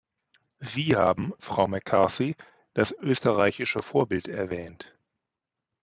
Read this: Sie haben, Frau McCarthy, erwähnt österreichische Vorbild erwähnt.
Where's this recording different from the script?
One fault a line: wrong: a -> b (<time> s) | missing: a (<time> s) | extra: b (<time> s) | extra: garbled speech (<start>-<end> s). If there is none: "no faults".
wrong: erwähnt -> das (2.7 s)